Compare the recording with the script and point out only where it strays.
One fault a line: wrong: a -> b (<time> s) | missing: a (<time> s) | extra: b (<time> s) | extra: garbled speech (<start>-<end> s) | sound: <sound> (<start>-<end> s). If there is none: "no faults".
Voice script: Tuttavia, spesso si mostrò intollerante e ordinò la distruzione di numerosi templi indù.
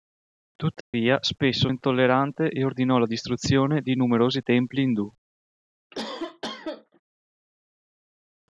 sound: dropout (0.8-0.9 s)
missing: si mostrò (1.7 s)
sound: cough (5.9-7.0 s)